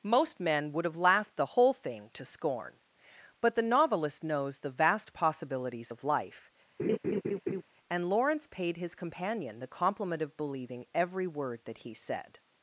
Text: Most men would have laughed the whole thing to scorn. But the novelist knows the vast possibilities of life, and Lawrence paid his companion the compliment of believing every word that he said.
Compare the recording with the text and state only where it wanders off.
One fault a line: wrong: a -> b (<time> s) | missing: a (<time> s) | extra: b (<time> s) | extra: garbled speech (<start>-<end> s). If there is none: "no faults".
no faults